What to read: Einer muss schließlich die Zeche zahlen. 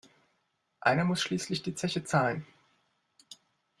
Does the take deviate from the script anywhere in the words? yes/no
no